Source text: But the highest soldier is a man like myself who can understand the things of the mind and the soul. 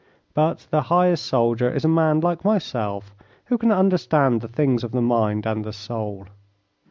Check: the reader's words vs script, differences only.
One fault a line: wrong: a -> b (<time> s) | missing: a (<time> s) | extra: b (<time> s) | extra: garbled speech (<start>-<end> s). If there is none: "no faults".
no faults